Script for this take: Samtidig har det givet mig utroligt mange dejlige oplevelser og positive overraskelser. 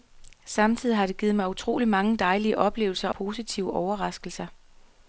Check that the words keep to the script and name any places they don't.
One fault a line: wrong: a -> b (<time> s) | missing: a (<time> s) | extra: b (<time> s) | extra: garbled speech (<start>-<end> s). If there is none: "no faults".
missing: og (3.1 s)